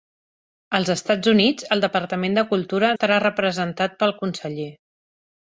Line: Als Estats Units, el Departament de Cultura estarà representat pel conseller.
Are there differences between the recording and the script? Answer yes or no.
no